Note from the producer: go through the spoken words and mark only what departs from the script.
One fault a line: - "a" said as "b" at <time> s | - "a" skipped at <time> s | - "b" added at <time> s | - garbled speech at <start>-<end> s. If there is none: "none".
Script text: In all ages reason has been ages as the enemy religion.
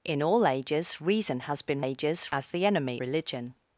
none